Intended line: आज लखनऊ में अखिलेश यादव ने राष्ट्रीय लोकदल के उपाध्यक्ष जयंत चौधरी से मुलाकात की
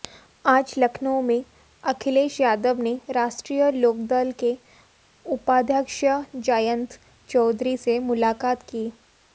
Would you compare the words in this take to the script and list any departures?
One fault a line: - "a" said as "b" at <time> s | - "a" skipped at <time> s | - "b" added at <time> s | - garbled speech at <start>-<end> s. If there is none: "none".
none